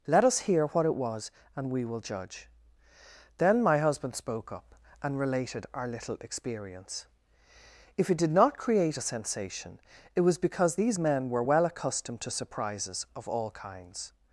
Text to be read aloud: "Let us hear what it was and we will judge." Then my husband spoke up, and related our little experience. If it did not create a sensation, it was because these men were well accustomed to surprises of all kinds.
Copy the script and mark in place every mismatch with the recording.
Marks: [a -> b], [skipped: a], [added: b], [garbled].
"Let us hear what it was and we will judge." Then my husband spoke up, and related our little experience. If it did not create a sensation, it was because these men were well accustomed to surprises of all kinds.